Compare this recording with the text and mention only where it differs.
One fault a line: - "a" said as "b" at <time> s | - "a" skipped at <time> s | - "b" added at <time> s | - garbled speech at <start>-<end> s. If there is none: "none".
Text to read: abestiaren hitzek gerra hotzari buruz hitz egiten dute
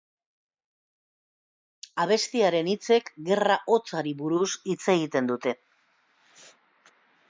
none